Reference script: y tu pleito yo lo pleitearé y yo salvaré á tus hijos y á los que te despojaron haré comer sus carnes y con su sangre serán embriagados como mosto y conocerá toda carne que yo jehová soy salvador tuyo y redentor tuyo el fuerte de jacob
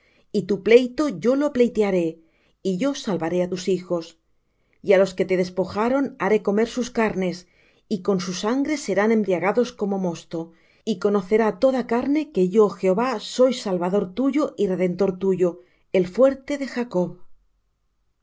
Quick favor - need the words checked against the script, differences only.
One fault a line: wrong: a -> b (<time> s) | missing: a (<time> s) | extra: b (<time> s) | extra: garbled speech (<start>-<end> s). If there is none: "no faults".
no faults